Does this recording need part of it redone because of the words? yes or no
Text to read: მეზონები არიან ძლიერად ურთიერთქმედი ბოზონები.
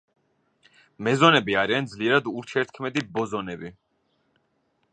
no